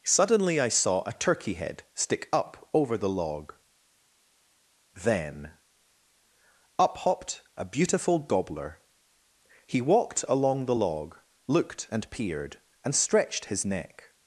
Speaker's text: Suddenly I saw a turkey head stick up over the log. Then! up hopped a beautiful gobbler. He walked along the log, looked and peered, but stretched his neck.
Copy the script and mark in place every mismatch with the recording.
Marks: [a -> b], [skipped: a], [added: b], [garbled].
Suddenly I saw a turkey head stick up over the log. Then! up hopped a beautiful gobbler. He walked along the log, looked and peered, [but -> and] stretched his neck.